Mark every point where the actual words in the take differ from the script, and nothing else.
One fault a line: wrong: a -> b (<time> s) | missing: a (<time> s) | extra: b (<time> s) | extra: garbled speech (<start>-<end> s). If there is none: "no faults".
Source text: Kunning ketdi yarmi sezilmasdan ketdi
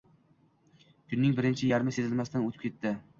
wrong: ketdi -> birinchi (1.4 s)
extra: o`tib (2.5 s)